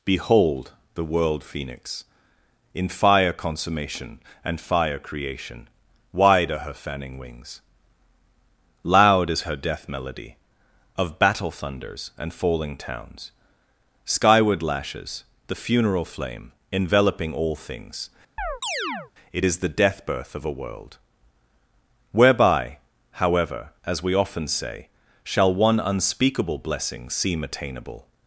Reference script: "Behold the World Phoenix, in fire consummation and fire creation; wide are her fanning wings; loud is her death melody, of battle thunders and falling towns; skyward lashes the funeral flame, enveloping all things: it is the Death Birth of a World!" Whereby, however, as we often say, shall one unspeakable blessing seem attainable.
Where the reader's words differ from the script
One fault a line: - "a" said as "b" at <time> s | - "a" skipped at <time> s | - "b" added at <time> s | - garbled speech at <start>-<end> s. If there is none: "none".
none